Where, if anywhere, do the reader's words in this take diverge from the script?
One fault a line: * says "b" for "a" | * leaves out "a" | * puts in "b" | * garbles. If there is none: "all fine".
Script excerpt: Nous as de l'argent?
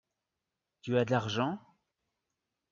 * says "Tu" for "Nous"